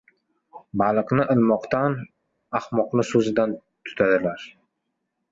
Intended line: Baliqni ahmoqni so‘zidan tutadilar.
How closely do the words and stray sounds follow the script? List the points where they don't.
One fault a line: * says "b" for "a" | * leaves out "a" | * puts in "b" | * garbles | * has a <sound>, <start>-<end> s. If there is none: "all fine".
* puts in "ilmoqdan"